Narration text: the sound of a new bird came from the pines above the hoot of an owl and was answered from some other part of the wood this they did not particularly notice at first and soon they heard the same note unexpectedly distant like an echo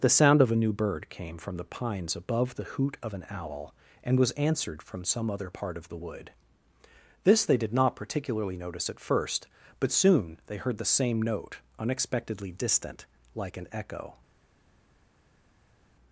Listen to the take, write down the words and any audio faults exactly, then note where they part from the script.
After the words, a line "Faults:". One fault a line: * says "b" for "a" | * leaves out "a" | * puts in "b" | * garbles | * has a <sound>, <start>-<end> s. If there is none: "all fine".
the sound of a new bird came from the pines above the hoot of an owl and was answered from some other part of the wood this they did not particularly notice at first but soon they heard the same note unexpectedly distant like an echo
Faults:
* says "but" for "and"